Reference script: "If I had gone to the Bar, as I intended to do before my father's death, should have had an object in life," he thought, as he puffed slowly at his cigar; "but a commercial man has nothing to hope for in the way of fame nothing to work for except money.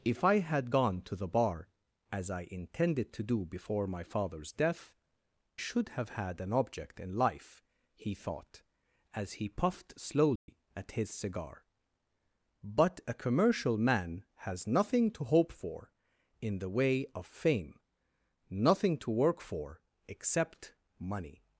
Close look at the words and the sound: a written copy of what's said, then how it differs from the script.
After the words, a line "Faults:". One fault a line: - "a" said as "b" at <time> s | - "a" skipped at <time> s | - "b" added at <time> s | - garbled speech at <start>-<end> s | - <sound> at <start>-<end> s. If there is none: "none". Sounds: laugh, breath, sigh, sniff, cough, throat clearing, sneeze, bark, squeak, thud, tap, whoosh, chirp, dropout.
"If I had gone to the Bar, as I intended to do before my father's death, should have had an object in life," he thought, as he puffed slowly at his cigar; "but a commercial man has nothing to hope for in the way of fame nothing to work for except money.
Faults:
- dropout at 10.4-10.5 s